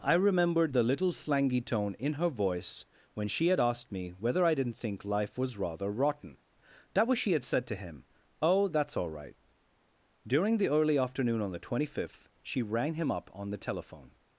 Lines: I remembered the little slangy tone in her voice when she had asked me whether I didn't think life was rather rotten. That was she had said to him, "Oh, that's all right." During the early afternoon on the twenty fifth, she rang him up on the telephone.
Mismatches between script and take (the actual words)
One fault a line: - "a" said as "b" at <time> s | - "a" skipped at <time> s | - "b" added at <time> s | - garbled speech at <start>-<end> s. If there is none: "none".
none